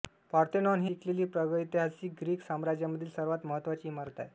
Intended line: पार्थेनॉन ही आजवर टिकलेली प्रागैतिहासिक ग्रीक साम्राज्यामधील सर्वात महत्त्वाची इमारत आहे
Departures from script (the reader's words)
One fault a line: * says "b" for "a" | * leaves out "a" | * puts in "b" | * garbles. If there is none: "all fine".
* leaves out "आजवर"